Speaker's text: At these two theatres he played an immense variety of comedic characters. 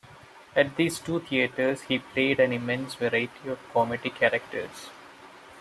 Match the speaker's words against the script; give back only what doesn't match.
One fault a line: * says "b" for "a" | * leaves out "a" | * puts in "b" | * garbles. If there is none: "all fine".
all fine